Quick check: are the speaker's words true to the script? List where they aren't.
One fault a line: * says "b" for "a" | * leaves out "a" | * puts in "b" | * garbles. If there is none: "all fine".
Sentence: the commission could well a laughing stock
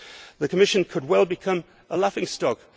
* puts in "become"